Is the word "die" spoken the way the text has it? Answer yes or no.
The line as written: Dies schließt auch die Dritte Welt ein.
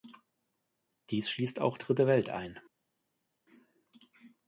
no